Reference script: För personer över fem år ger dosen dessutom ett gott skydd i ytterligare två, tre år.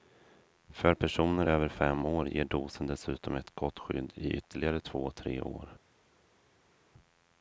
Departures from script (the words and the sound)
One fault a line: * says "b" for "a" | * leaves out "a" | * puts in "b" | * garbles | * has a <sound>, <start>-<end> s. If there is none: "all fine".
all fine